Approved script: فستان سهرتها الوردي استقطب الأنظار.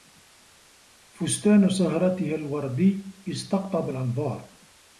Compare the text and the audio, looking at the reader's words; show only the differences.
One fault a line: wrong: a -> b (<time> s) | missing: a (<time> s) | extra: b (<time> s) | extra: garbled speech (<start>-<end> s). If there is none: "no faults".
no faults